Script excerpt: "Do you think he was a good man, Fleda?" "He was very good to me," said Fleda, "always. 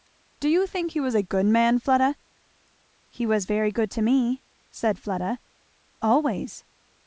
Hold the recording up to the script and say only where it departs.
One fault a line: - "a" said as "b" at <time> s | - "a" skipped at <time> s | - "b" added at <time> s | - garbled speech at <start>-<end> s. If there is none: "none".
none